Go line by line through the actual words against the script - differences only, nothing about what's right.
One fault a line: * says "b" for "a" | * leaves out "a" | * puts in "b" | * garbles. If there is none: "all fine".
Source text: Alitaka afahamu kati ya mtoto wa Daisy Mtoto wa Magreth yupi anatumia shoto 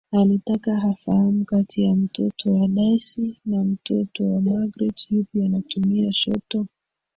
* puts in "na"